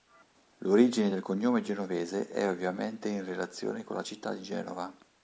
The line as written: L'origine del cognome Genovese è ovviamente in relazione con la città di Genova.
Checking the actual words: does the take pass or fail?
pass